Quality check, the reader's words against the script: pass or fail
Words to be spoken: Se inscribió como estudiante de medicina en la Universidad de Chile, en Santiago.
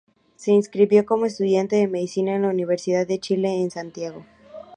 pass